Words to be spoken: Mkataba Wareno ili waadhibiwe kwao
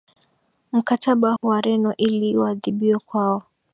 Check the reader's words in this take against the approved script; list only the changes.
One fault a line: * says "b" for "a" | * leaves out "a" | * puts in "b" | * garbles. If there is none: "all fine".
all fine